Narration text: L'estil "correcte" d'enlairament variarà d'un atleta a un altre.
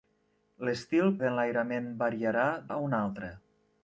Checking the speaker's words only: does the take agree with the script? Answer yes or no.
no